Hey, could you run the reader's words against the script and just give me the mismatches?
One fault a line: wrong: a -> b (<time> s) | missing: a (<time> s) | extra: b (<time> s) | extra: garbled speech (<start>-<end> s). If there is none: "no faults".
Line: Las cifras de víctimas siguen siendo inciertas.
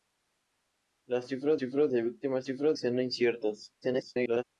extra: cifras (1.6 s)
wrong: siguen -> cifras (2.4 s)
extra: garbled speech (3.8-4.4 s)